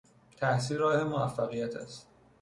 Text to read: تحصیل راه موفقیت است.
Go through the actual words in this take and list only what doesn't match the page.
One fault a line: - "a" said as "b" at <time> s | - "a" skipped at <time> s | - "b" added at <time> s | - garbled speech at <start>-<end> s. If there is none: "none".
none